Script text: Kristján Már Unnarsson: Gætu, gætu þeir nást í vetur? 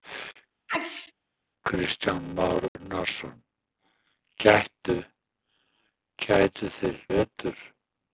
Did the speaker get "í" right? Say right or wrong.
wrong